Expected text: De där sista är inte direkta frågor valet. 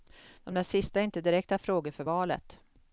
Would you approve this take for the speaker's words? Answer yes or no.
no